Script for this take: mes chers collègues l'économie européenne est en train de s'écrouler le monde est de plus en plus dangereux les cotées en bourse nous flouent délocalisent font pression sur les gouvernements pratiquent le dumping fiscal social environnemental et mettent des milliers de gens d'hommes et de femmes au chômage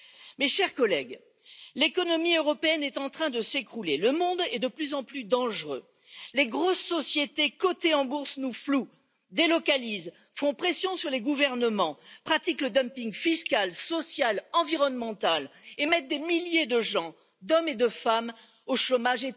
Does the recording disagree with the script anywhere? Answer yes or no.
yes